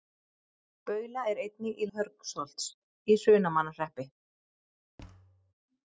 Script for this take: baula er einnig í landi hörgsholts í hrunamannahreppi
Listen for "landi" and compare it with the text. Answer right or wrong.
wrong